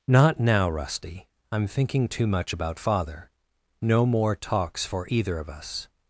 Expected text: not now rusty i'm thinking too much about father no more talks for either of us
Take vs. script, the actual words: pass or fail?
pass